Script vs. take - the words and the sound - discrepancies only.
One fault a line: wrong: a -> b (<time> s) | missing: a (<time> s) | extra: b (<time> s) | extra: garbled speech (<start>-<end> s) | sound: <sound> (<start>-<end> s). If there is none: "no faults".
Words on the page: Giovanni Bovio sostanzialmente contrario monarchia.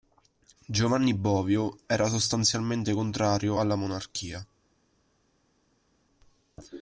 extra: era (1.9 s)
extra: alla (3.6 s)